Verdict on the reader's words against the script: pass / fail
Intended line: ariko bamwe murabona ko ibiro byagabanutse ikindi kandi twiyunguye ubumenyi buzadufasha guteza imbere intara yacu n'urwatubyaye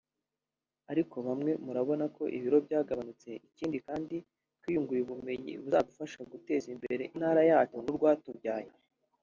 pass